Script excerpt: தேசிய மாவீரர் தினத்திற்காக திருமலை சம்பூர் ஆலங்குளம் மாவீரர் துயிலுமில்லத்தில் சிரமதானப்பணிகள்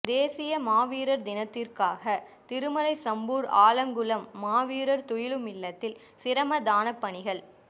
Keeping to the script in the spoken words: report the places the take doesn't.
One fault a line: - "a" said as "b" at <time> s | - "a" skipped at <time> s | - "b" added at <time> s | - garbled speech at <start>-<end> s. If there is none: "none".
none